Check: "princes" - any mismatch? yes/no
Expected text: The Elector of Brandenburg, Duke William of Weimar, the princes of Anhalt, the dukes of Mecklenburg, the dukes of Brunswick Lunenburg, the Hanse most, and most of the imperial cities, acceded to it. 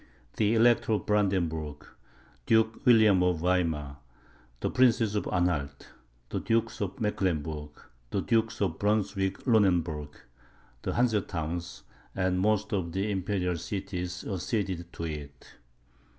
no